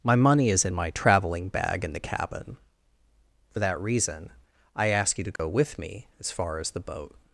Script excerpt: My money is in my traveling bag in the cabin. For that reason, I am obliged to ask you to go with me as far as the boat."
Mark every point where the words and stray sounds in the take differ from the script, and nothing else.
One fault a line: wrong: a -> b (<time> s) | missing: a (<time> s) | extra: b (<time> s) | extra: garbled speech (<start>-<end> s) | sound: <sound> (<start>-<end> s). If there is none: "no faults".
missing: am obliged to (4.9 s)
sound: dropout (5.4-5.4 s)